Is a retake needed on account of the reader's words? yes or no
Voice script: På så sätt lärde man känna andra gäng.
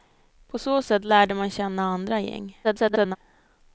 yes